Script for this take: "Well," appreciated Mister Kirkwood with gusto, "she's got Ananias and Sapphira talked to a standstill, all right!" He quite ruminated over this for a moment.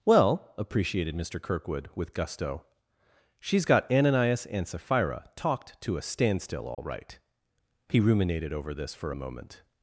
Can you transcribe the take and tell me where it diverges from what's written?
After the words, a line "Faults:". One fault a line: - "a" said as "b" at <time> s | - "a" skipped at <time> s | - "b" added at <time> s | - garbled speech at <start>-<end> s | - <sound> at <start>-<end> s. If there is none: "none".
"Well," appreciated Mister Kirkwood with gusto, "she's got Ananias and Sapphira talked to a standstill, all right!" He ruminated over this for a moment.
Faults:
- dropout at 6.7-6.8 s
- "quite" skipped at 8.0 s